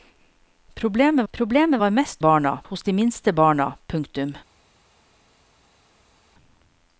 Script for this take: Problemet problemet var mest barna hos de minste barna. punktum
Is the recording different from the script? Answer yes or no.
no